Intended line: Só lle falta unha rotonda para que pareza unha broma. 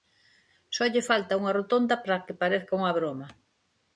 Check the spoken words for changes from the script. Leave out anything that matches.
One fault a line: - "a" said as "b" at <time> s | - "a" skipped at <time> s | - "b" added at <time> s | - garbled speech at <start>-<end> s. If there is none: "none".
none